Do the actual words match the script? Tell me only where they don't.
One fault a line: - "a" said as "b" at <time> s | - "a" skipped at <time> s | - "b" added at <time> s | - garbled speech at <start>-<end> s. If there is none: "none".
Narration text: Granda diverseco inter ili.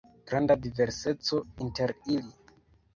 none